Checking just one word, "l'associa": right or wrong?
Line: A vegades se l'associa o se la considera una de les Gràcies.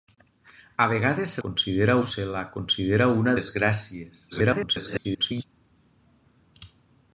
wrong